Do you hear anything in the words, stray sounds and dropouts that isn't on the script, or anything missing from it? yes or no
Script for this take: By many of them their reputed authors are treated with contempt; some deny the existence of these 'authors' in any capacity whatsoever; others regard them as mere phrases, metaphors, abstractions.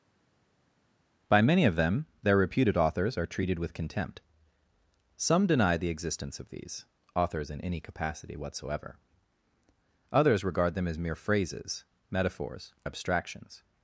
no